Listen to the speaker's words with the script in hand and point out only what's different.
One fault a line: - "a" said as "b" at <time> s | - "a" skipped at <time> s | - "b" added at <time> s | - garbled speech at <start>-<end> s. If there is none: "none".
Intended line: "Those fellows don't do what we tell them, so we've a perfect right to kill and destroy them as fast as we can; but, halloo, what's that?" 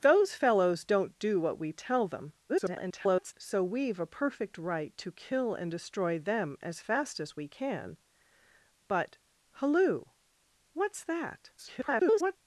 - garbled speech at 2.5-3.3 s
- garbled speech at 11.6-12.4 s